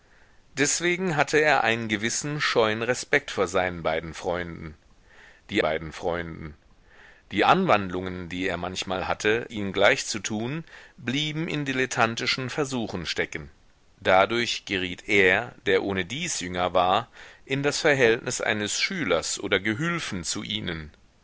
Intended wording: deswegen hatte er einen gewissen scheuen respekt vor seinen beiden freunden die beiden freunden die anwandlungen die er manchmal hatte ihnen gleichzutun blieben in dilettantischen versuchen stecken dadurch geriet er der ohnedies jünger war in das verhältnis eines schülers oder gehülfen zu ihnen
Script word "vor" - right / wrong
right